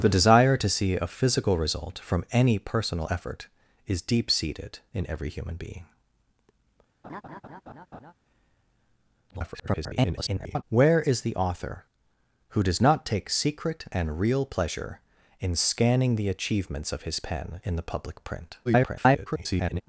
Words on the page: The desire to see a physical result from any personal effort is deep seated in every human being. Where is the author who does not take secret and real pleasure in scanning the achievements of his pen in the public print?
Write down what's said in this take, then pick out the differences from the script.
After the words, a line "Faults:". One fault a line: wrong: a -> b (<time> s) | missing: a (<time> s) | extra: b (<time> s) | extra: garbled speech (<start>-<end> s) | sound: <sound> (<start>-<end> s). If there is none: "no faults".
The desire to see a physical result from any personal effort is deep seated in every human being. [garbled] Where is the author who does not take secret and real pleasure in scanning the achievements of his pen in the public print? [garbled]
Faults:
sound: laugh (7.0-8.1 s)
extra: garbled speech (9.3-10.6 s)
extra: garbled speech (18.6-19.8 s)